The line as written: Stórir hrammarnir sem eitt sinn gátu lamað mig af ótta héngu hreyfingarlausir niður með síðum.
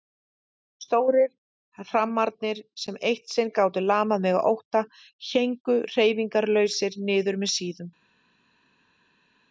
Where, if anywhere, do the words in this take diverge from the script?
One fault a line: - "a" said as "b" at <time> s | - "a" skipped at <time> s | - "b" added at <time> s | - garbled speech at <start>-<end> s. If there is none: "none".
none